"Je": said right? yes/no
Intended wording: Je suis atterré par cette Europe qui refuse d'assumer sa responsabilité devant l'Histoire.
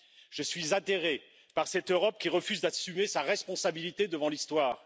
yes